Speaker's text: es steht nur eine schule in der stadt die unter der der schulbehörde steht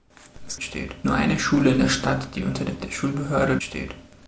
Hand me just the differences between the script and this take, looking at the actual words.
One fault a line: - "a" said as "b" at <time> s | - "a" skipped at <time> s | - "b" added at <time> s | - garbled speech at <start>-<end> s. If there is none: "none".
none